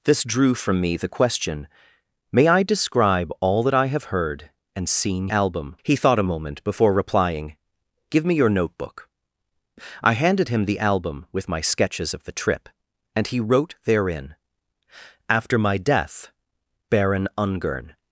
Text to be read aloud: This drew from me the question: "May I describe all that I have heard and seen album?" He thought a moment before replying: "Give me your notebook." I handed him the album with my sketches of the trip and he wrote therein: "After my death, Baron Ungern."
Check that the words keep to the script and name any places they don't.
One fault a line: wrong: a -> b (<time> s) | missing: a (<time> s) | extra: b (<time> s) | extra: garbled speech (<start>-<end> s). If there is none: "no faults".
no faults